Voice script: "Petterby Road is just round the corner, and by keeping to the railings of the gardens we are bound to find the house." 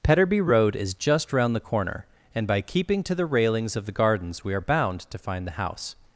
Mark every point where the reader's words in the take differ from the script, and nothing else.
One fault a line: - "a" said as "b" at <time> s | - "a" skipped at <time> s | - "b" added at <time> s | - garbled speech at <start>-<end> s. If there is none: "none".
none